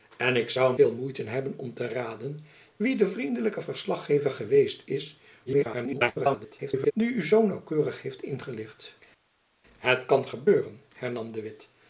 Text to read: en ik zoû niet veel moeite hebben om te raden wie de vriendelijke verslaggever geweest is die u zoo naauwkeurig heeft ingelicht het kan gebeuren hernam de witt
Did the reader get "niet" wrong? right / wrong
wrong